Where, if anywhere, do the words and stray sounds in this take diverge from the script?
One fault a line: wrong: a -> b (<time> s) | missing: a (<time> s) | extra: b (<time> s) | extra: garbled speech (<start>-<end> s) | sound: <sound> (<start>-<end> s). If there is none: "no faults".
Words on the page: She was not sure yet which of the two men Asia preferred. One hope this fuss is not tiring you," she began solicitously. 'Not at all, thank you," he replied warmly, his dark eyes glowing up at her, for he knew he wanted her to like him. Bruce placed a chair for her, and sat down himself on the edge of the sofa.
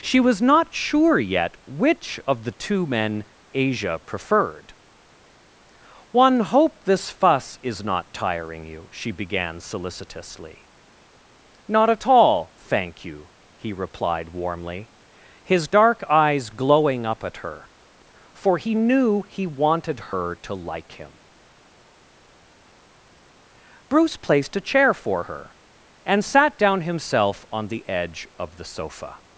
no faults